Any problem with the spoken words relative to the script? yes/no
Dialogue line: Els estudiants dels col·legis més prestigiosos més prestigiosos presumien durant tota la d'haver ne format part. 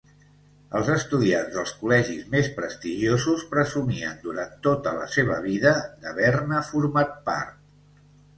yes